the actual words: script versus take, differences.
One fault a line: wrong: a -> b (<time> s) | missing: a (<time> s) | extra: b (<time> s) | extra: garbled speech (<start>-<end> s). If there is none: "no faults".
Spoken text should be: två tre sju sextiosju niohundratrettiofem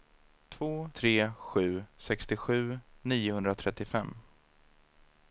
no faults